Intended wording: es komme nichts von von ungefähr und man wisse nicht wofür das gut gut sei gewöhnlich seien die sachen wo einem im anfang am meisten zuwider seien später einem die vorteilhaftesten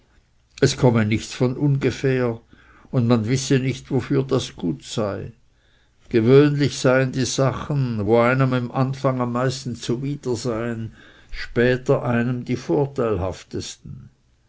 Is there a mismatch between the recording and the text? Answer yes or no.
yes